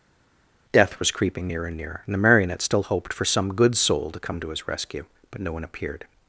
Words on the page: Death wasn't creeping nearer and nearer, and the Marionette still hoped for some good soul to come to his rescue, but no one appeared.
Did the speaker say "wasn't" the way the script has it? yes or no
no